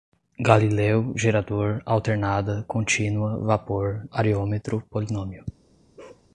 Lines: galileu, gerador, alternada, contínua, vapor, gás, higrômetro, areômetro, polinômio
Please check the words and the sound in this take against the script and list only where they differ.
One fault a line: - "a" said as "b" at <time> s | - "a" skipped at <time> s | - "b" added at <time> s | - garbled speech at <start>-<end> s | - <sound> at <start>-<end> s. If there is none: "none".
- "gás higrômetro" skipped at 4.0 s
- bark at 6.0-6.3 s